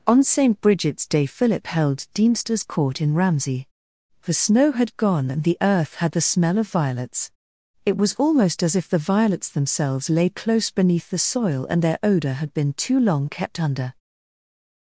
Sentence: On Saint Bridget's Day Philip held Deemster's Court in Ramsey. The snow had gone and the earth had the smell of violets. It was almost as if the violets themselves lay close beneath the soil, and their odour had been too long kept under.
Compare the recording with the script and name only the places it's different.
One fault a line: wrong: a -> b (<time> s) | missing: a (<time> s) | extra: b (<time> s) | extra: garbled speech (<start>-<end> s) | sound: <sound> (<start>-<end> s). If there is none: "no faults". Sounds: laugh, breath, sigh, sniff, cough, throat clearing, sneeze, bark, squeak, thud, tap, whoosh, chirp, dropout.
no faults